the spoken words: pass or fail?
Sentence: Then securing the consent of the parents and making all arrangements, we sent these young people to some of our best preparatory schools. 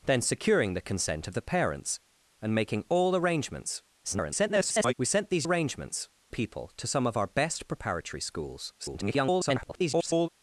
fail